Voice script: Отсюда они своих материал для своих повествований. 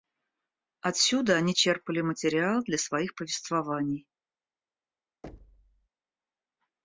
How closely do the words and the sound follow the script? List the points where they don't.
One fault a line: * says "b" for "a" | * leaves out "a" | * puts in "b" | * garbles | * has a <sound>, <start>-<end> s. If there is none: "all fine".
* says "черпали" for "своих"
* has a thud, 5.2-5.9 s